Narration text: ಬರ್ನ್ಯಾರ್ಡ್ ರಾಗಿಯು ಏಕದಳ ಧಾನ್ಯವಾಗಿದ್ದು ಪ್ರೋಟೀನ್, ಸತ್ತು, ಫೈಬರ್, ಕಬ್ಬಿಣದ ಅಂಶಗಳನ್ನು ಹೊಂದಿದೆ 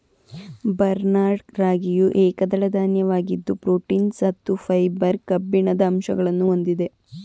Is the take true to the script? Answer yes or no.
yes